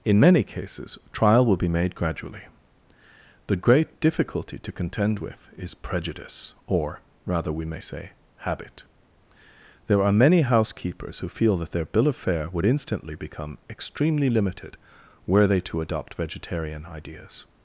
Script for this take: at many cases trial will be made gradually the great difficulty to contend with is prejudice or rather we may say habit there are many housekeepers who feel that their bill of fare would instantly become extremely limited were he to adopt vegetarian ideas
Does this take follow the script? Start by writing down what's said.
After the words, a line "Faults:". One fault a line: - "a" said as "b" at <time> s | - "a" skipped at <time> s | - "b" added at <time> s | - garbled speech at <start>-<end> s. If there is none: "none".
in many cases trial will be made gradually the great difficulty to contend with is prejudice or rather we may say habit there are many housekeepers who feel that their bill of fare would instantly become extremely limited were they to adopt vegetarian ideas
Faults:
- "at" said as "in" at 0.0 s
- "he" said as "they" at 15.5 s